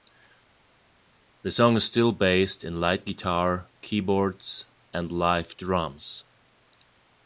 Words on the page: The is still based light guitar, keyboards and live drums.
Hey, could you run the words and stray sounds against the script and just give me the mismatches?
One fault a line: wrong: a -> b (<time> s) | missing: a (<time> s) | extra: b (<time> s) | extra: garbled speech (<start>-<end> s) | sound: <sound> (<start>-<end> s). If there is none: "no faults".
extra: song (1.5 s)
extra: in (2.6 s)